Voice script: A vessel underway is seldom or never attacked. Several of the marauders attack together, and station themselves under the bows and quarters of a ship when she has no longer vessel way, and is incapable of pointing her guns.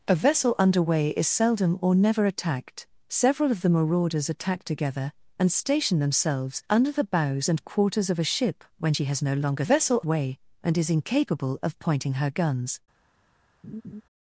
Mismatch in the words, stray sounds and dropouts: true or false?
true